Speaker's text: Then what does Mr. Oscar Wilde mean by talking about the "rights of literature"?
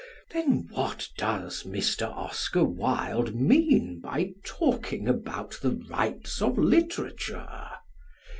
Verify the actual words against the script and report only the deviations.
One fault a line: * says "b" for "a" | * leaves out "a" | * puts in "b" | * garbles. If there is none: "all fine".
all fine